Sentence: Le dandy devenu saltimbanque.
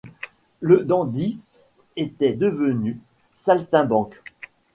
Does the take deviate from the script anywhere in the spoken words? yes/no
yes